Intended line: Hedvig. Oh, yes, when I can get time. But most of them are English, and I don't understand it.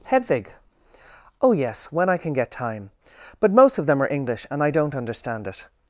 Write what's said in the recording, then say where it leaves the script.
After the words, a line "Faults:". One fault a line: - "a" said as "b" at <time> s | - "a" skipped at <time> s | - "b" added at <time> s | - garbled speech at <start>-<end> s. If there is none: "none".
Hedvig. Oh, yes, when I can get time. But most of them are English, and I don't understand it.
Faults:
none